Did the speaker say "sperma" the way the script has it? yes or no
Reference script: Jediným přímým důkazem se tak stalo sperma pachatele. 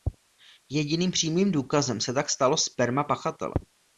yes